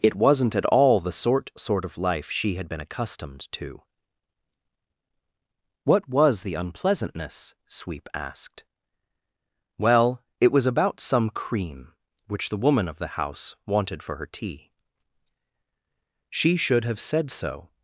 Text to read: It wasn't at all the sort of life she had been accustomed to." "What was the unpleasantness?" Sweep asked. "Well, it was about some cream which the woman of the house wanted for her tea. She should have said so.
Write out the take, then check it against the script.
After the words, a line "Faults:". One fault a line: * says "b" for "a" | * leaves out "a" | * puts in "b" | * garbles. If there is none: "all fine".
It wasn't at all the sort sort of life she had been accustomed to." "What was the unpleasantness?" Sweep asked. "Well, it was about some cream which the woman of the house wanted for her tea. She should have said so.
Faults:
* puts in "sort"